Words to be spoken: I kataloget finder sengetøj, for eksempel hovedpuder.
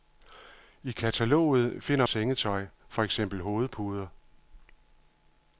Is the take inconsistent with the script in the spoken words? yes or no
no